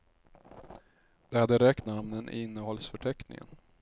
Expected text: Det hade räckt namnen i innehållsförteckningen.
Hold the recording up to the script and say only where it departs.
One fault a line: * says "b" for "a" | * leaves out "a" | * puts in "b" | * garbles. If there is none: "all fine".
all fine